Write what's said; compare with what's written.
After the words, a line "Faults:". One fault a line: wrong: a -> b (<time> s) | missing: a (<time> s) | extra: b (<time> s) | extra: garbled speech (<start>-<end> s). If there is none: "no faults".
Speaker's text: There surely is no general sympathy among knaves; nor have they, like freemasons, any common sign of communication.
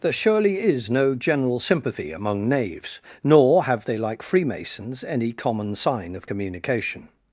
There surely is no general sympathy among knaves; nor have they, like freemasons, any common sign of communication.
Faults:
no faults